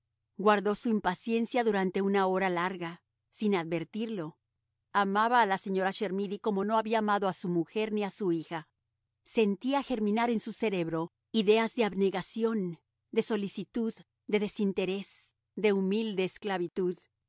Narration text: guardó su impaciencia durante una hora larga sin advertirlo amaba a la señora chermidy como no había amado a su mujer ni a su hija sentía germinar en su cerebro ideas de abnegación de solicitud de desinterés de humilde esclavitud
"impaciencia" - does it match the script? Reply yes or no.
yes